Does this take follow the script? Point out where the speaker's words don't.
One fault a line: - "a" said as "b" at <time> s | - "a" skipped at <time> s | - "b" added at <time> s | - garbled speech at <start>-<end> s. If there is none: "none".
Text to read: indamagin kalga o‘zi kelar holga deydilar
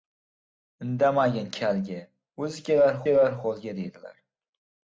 - "kelar" added at 3.1 s